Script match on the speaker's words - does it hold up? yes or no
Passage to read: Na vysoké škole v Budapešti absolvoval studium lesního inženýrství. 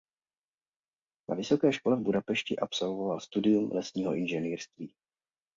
yes